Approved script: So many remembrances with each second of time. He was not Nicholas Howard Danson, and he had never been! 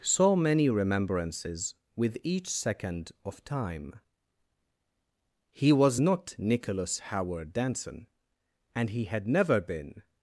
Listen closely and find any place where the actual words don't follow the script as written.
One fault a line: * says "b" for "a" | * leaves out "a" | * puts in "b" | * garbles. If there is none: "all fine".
all fine